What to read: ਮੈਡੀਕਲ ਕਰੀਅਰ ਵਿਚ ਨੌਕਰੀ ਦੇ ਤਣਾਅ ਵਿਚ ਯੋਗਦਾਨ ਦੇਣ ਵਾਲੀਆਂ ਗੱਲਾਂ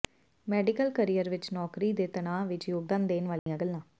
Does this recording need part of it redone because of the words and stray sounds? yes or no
yes